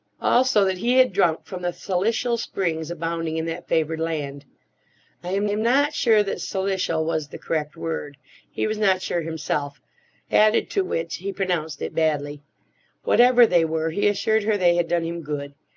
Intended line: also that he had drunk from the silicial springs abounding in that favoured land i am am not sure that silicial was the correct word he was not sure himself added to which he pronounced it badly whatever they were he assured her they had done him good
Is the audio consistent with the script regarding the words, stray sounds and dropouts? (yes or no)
yes